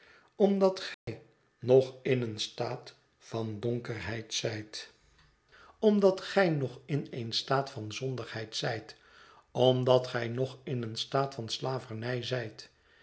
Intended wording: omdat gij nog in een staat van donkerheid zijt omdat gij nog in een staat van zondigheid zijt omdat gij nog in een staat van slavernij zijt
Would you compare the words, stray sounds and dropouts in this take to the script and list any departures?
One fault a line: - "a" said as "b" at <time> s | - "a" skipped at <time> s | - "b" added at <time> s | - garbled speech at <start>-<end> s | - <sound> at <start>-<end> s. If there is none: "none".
- dropout at 0.9-1.1 s